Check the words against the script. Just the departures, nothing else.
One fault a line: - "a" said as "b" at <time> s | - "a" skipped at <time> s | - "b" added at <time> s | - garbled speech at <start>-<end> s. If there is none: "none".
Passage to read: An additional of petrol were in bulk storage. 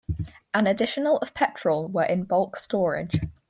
none